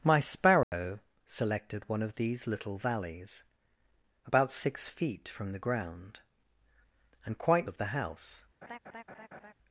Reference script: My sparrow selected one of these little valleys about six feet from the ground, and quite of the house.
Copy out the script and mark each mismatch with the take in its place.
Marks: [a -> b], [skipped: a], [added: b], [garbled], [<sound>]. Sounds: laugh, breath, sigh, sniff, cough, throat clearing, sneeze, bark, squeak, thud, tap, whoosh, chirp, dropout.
My sparrow [dropout] selected one of these little valleys about six feet from the ground, and quite of the house. [laugh]